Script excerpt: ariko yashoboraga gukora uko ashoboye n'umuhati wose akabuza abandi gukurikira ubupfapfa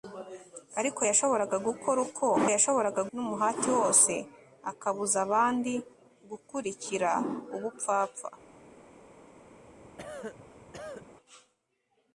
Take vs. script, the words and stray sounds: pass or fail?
fail